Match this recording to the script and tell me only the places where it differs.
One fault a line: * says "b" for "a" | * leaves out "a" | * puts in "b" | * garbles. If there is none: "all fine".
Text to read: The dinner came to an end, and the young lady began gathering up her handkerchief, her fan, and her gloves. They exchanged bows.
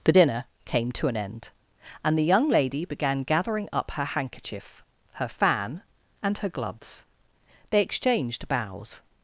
all fine